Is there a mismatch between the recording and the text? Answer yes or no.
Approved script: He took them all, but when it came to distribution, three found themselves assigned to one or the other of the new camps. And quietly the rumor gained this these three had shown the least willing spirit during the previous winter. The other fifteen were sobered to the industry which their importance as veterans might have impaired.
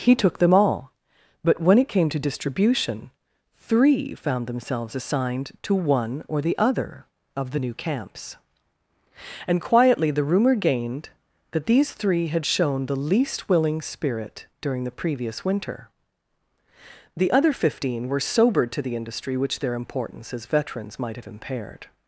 yes